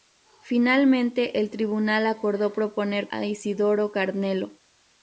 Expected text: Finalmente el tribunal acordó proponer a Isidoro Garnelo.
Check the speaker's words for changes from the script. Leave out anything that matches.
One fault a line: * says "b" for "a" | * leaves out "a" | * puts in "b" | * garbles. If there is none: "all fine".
all fine